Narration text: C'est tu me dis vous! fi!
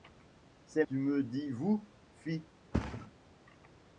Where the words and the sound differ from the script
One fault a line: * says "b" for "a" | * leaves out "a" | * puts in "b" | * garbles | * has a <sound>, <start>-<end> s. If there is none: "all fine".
* has a thud, 2.7-3.1 s